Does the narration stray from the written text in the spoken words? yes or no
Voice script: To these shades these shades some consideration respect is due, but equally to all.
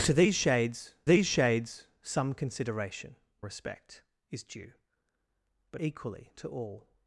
no